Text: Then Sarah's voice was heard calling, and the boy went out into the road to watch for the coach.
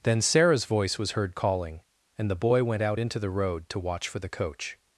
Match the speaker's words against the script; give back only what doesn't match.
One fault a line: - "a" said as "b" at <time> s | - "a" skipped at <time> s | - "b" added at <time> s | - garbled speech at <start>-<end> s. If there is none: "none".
none